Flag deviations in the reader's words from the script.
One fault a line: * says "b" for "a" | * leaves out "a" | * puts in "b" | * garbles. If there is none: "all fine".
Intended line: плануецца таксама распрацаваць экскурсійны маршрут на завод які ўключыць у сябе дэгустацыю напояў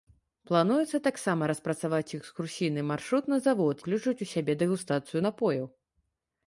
* leaves out "які"